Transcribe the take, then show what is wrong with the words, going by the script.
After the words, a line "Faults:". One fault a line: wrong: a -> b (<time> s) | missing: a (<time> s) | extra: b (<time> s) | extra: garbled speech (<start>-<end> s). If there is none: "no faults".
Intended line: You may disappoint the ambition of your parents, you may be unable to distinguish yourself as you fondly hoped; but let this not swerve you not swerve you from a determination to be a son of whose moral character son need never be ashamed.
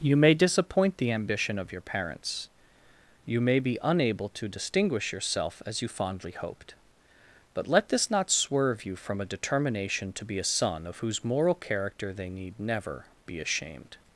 You may disappoint the ambition of your parents, you may be unable to distinguish yourself as you fondly hoped; but let this not swerve you from a determination to be a son of whose moral character they need never be ashamed.
Faults:
missing: not swerve you (8.9 s)
wrong: son -> they (12.1 s)